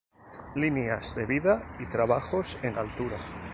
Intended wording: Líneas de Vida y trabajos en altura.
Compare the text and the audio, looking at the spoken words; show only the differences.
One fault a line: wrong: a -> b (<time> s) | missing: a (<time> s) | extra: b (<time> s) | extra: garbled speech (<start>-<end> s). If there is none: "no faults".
no faults